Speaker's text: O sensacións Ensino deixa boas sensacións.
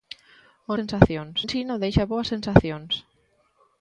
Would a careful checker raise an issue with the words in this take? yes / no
no